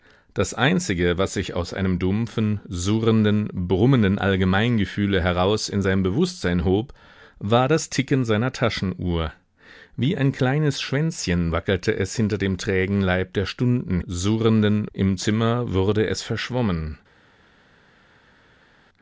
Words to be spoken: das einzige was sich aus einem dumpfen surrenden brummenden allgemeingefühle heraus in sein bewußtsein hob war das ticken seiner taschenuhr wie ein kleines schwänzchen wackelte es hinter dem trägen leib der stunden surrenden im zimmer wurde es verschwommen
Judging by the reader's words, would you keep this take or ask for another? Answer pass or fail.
pass